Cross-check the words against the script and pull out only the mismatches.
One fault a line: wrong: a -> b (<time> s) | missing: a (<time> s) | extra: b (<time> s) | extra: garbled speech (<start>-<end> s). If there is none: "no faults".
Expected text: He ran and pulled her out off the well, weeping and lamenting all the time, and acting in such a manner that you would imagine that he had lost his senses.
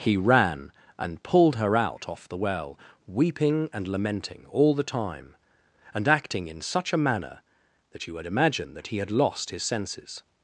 no faults